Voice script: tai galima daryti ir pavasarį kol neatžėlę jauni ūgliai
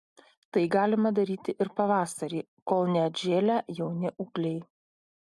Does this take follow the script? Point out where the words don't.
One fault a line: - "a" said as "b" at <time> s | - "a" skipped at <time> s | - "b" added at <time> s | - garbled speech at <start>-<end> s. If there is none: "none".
none